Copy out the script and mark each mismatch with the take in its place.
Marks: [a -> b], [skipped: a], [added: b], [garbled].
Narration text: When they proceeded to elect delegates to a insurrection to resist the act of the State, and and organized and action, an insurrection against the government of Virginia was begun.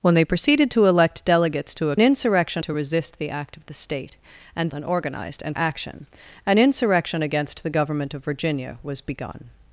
When they proceeded to elect delegates to a insurrection to resist the act of the State, and and organized and action, an insurrection against the government of Virginia was begun.